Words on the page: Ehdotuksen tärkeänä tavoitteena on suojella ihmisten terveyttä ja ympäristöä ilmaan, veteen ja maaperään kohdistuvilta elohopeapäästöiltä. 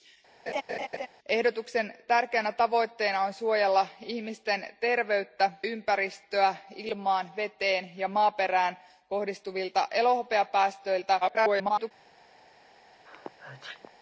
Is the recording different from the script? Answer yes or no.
yes